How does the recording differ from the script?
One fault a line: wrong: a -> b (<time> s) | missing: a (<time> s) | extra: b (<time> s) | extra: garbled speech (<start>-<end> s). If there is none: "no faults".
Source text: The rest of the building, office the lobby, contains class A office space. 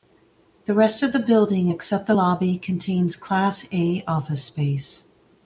wrong: office -> except (1.7 s)